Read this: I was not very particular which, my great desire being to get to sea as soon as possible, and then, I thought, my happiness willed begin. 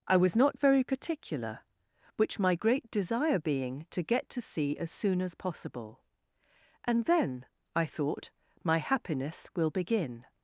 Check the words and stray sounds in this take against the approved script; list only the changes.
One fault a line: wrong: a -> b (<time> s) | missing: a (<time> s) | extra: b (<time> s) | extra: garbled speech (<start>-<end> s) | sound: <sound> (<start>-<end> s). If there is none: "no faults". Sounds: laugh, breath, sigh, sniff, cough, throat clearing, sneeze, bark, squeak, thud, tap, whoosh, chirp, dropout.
wrong: willed -> will (9.6 s)